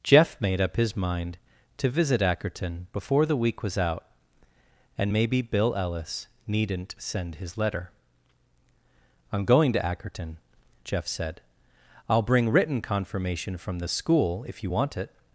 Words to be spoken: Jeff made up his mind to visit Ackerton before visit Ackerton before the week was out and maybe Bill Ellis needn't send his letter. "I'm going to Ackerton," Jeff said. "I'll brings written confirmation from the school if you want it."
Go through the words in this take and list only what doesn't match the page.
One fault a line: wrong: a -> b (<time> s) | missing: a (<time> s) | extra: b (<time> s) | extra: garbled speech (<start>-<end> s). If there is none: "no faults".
missing: visit Ackerton before (3.2 s)
wrong: brings -> bring (12.2 s)